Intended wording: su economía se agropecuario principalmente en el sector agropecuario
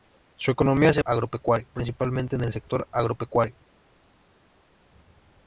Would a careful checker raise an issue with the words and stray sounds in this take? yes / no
no